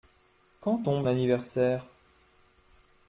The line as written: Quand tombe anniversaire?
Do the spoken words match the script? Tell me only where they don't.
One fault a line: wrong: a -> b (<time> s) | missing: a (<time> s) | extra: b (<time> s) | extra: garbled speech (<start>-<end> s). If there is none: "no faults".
no faults